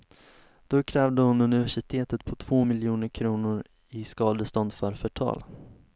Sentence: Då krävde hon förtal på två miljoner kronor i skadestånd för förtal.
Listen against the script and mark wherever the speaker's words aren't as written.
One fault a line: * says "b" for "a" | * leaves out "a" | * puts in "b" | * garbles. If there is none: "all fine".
* says "universitetet" for "förtal"